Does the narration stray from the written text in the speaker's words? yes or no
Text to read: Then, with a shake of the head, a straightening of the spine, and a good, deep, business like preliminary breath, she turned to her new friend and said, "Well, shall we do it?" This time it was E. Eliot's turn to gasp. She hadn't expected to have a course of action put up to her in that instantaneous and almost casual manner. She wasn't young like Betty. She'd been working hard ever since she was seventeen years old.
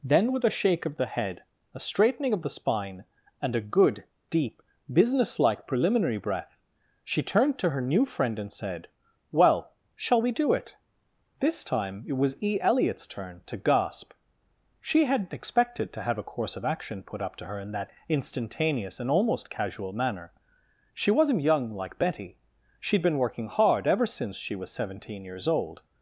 no